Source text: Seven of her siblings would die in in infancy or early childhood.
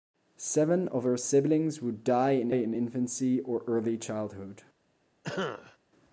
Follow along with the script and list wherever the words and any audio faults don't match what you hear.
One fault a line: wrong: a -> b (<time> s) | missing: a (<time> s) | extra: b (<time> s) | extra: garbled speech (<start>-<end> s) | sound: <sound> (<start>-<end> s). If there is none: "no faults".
sound: cough (5.2-5.8 s)